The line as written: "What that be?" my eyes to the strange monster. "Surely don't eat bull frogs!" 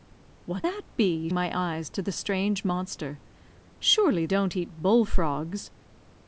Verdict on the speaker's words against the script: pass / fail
pass